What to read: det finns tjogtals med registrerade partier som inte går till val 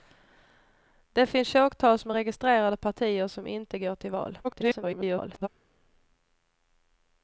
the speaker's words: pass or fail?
fail